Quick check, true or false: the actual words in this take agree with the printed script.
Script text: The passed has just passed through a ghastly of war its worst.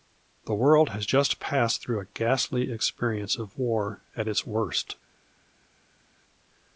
false